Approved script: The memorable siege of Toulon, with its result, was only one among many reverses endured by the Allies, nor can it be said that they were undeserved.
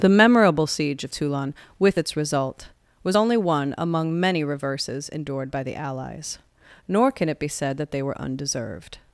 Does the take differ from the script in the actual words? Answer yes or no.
no